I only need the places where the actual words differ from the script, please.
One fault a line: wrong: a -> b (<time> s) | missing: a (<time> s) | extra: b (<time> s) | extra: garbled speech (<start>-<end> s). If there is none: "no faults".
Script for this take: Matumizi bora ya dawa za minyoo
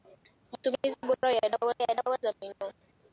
extra: ya dawa (1.8 s)